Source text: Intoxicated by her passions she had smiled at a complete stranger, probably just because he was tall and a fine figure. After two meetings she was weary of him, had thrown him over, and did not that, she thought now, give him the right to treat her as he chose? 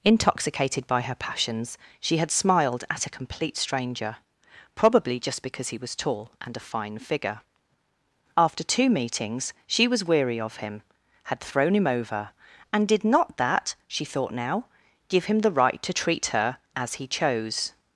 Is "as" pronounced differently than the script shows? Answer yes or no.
no